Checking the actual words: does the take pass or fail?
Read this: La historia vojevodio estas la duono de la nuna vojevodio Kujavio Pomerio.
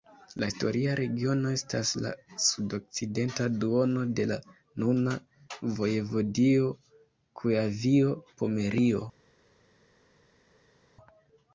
fail